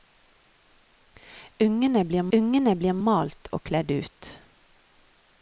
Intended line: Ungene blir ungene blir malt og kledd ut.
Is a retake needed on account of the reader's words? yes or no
no